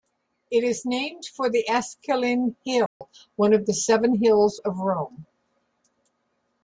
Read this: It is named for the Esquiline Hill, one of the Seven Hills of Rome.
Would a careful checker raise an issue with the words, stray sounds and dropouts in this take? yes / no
yes